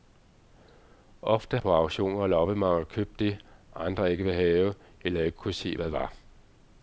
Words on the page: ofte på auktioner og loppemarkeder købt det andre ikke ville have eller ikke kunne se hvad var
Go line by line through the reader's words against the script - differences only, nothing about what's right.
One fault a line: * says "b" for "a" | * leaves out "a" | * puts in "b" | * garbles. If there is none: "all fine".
all fine